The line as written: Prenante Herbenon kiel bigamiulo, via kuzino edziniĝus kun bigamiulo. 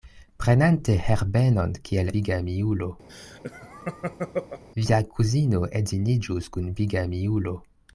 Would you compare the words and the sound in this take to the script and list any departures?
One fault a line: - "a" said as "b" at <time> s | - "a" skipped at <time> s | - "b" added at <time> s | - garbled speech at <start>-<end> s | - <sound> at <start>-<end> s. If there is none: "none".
- laugh at 3.1-4.6 s